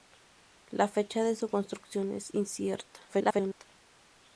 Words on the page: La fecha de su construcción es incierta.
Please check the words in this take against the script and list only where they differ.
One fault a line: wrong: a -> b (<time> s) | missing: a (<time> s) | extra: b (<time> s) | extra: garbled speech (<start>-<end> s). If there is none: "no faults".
extra: garbled speech (3.1-3.7 s)